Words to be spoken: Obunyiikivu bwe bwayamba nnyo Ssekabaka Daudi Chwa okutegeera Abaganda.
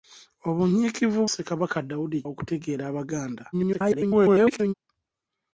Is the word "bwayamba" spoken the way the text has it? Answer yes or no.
no